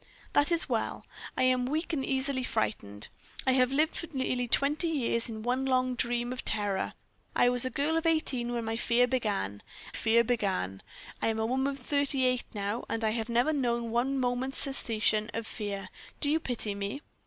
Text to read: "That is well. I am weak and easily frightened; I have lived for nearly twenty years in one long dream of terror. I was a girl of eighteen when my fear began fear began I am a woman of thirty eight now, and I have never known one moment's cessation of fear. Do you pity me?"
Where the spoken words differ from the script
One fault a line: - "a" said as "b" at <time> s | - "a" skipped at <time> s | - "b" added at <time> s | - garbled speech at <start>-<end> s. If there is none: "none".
none